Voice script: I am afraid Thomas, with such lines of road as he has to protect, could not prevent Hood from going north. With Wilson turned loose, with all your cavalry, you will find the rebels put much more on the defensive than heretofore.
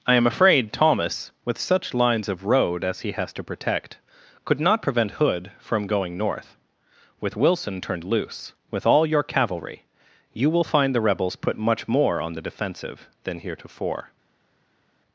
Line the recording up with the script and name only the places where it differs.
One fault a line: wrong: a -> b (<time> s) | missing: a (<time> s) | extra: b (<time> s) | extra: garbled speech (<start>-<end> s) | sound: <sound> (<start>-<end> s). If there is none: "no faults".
no faults